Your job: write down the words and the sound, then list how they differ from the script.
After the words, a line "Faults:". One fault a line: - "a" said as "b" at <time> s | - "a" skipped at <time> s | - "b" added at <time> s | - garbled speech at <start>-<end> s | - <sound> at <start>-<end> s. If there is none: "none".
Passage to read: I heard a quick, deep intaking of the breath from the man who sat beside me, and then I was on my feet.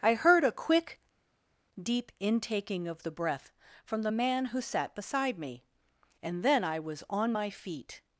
I heard a quick, deep intaking of the breath from the man who sat beside me, and then I was on my feet.
Faults:
none